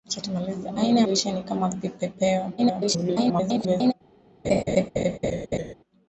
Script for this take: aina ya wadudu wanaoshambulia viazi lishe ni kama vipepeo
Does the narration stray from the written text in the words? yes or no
yes